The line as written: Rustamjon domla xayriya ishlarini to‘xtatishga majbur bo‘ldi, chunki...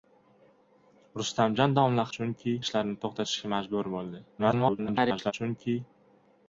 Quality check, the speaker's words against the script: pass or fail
fail